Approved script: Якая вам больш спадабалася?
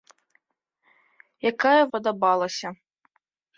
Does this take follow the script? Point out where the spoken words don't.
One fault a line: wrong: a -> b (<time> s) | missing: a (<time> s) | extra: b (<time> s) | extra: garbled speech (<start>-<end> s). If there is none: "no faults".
missing: вам больш (1.8 s)